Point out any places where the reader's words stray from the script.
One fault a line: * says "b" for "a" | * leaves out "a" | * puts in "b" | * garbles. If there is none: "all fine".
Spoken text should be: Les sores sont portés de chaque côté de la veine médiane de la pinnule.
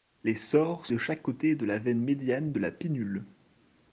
* leaves out "sont portés"